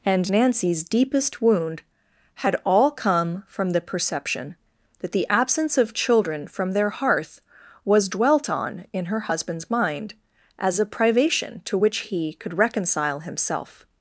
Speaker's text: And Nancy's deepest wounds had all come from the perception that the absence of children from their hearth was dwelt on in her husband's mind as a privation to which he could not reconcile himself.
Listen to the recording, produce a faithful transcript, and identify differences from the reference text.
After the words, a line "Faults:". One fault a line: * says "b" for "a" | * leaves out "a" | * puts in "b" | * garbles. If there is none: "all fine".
And Nancy's deepest wound had all come from the perception that the absence of children from their hearth was dwelt on in her husband's mind as a privation to which he could reconcile himself.
Faults:
* says "wound" for "wounds"
* leaves out "not"